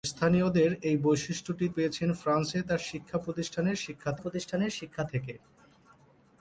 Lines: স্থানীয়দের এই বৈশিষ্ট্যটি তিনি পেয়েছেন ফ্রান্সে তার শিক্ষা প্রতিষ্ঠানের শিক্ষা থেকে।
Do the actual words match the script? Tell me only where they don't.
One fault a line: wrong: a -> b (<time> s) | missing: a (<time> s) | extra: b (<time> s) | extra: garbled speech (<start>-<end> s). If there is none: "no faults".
missing: তিনি (1.6 s)
extra: প্রতিষ্ঠানের শিক্ষা (4.2 s)